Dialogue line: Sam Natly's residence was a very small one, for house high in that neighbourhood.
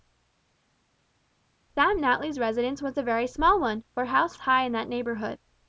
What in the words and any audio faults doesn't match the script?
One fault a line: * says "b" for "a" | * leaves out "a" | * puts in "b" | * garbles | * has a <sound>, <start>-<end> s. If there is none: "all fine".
all fine